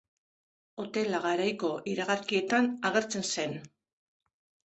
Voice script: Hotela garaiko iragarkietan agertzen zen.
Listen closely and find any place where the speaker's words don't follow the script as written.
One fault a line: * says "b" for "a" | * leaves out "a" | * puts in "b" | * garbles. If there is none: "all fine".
all fine